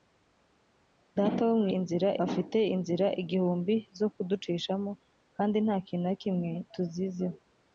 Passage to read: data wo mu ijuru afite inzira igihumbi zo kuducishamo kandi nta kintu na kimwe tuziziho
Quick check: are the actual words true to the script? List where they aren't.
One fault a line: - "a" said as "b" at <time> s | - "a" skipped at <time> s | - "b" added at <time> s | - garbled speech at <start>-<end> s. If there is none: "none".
- "ijuru" said as "inzira" at 1.8 s